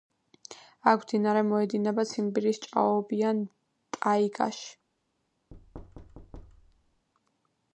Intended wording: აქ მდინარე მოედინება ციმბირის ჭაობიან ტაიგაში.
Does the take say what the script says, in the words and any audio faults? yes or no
no